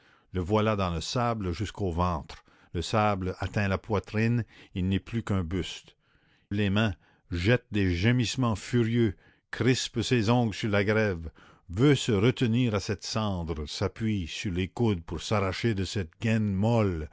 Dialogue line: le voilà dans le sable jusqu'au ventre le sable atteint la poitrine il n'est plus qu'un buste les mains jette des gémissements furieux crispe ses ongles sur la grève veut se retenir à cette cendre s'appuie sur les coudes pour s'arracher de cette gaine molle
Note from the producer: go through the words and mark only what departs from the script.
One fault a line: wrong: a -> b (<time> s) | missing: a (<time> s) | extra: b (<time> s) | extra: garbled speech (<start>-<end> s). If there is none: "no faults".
no faults